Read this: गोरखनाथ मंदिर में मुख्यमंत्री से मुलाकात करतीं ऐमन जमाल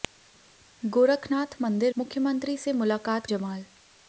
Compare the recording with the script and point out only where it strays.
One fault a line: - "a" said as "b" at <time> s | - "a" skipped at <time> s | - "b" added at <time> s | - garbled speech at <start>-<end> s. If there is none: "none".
- "में" skipped at 1.9 s
- "करतीं ऐमन" skipped at 3.3 s